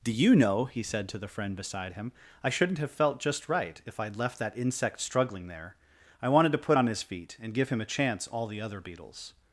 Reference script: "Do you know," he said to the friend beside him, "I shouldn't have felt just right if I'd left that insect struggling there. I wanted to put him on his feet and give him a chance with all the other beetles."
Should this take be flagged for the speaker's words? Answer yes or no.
yes